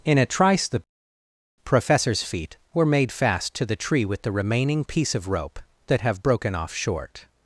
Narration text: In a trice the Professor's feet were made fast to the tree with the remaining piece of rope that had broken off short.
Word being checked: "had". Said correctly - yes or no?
no